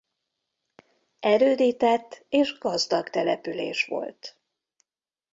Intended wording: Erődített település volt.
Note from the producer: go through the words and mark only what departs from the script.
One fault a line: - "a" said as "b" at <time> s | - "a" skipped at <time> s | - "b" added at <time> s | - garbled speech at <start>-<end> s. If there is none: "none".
- "és gazdag" added at 2.3 s